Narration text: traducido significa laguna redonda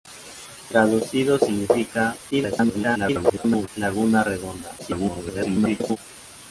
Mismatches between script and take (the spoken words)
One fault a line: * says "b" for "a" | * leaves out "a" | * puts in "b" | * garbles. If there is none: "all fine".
* garbles
* garbles